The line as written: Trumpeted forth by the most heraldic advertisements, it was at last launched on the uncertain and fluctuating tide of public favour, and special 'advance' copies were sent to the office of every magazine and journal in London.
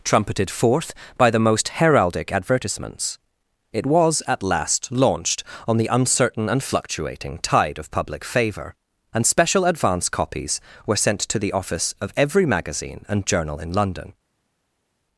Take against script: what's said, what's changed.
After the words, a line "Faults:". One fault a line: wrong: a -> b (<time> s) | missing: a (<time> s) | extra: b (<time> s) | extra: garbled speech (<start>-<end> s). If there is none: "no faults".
Trumpeted forth by the most heraldic advertisements, it was at last launched on the uncertain and fluctuating tide of public favour, and special 'advance' copies were sent to the office of every magazine and journal in London.
Faults:
no faults